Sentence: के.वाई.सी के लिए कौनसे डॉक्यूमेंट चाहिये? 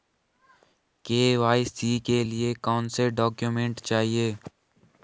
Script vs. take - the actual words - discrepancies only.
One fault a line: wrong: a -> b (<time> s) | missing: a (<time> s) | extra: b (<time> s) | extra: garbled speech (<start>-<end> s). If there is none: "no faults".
no faults